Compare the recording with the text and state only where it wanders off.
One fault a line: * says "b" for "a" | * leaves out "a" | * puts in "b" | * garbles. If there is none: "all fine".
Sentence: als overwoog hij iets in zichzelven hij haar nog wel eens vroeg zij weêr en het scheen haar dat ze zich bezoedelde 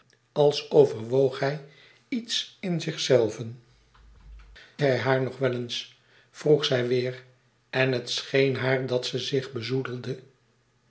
all fine